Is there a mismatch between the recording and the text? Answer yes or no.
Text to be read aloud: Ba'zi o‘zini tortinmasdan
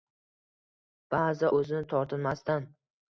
no